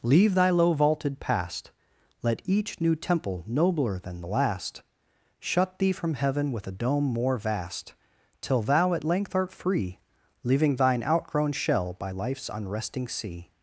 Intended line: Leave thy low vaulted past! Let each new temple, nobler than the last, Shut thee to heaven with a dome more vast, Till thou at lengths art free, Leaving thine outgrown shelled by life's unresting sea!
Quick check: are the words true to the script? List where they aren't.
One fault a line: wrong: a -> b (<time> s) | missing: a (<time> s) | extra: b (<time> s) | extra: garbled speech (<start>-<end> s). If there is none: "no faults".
wrong: to -> from (5.9 s)
wrong: lengths -> length (9.0 s)
wrong: shelled -> shell (11.5 s)